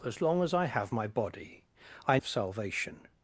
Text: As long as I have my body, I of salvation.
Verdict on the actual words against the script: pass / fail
pass